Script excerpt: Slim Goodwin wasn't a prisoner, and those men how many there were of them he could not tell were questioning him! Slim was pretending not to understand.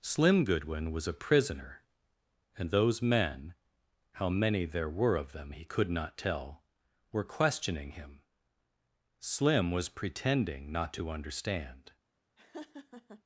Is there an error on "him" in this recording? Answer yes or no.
no